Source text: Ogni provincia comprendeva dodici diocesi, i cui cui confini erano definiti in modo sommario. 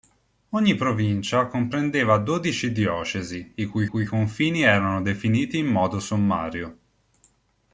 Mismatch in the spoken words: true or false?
false